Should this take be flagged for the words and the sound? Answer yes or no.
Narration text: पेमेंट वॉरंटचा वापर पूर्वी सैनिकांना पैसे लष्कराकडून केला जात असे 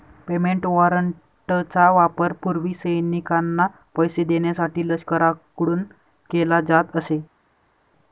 yes